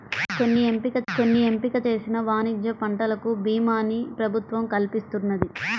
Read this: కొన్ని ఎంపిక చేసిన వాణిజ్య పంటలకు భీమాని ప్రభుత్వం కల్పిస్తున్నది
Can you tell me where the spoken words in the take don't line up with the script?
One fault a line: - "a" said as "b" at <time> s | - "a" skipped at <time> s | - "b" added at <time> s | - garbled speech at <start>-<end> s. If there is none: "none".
- "కొన్ని ఎంపిక" added at 1.1 s